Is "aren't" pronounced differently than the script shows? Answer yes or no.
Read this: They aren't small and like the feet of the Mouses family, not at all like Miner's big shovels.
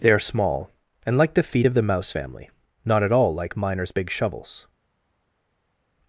yes